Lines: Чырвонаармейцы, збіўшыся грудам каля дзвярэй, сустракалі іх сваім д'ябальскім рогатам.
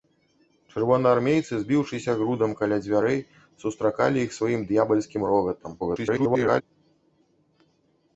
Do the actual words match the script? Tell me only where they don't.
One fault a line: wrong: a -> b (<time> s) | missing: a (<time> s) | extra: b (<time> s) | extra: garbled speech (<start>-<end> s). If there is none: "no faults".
extra: garbled speech (5.8-6.6 s)